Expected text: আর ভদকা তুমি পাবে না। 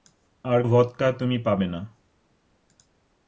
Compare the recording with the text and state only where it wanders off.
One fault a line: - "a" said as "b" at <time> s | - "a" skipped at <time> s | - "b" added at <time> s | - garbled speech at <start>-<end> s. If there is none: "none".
none